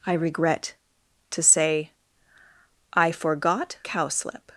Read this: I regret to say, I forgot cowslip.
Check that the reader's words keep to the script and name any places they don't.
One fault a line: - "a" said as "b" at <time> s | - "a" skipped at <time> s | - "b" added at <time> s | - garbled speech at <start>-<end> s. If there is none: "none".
none